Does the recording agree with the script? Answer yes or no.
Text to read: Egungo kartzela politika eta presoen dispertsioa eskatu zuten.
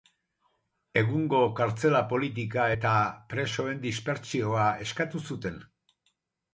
yes